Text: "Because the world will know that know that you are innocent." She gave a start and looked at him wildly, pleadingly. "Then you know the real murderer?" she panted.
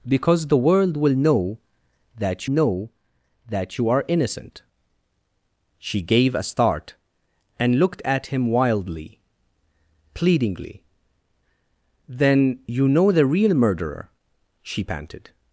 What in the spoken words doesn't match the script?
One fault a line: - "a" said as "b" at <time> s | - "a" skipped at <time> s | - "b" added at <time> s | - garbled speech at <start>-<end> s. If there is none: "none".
none